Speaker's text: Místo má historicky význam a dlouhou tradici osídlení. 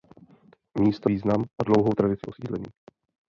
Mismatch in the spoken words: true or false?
true